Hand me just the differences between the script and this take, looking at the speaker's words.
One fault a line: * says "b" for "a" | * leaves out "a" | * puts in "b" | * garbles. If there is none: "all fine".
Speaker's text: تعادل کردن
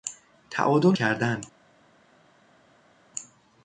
all fine